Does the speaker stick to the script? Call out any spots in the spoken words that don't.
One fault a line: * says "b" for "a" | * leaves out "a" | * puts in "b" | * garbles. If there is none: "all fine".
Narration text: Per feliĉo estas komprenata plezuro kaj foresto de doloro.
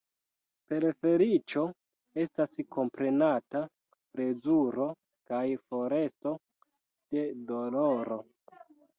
all fine